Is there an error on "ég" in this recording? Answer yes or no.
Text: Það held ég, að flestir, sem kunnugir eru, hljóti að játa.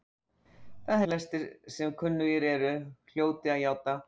yes